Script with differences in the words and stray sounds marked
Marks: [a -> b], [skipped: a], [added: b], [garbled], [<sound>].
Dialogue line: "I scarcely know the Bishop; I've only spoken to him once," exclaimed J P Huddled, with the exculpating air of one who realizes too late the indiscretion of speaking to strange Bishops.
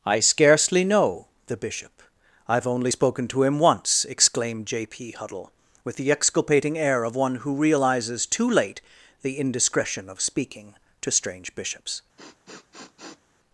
"I scarcely know the Bishop; I've only spoken to him once," exclaimed J P [Huddled, -> Huddle] with the exculpating air of one who realizes too late the indiscretion of speaking to strange Bishops. [sniff]